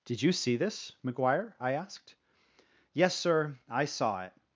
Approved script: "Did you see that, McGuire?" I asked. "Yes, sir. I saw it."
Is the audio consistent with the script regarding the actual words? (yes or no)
no